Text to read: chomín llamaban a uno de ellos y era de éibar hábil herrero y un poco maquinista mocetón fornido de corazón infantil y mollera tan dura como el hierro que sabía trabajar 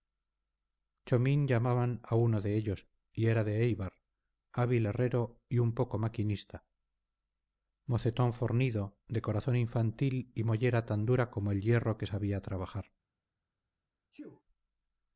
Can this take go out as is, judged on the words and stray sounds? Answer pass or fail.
fail